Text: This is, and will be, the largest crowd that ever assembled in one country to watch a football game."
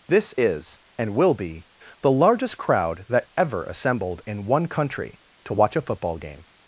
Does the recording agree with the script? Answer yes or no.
yes